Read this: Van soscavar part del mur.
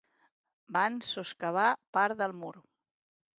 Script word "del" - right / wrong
right